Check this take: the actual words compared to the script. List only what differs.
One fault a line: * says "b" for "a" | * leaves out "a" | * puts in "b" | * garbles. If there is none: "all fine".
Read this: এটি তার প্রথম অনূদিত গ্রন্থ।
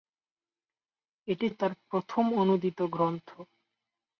all fine